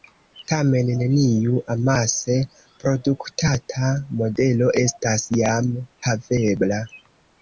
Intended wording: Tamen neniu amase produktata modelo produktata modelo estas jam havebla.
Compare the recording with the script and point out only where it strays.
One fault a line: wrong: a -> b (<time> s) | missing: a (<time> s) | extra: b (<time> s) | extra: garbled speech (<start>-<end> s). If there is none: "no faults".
missing: produktata modelo (4.7 s)